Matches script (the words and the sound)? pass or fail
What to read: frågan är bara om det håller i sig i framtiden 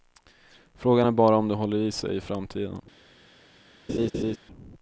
fail